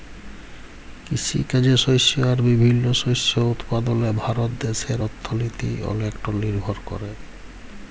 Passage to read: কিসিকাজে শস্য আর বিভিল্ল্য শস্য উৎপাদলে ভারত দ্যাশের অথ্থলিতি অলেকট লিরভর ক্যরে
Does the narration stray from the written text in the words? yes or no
no